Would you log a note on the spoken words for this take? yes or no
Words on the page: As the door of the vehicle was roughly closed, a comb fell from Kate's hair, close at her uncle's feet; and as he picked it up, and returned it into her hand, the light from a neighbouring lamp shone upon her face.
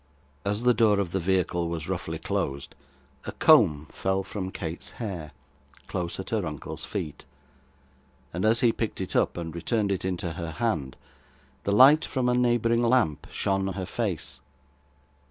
yes